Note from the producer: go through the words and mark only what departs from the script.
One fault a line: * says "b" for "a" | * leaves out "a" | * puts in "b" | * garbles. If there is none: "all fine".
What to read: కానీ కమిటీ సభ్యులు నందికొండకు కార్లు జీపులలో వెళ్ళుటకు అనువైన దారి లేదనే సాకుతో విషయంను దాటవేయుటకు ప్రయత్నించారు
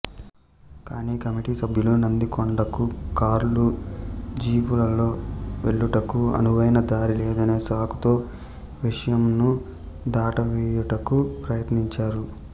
all fine